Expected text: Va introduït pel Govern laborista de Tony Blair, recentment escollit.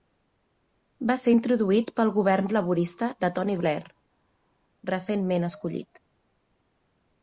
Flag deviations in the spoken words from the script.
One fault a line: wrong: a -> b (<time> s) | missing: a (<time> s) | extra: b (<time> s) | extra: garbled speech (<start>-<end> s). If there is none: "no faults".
extra: ser (1.2 s)